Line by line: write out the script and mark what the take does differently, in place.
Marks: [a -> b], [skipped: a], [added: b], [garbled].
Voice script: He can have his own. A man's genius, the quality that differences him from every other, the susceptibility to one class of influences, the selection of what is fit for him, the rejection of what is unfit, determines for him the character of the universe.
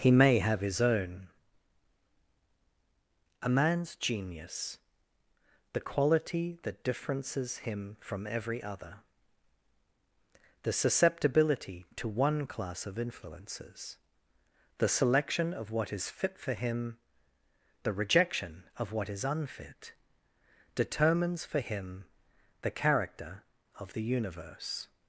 He [can -> may] have his own. A man's genius, the quality that differences him from every other, the susceptibility to one class of influences, the selection of what is fit for him, the rejection of what is unfit, determines for him the character of the universe.